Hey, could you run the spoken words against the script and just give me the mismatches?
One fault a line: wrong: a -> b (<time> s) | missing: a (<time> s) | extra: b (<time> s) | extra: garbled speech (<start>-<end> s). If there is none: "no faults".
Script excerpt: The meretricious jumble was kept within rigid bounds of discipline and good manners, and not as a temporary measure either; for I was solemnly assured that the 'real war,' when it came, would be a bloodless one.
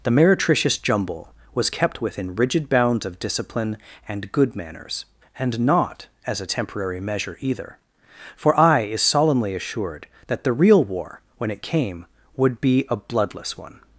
wrong: was -> is (8.8 s)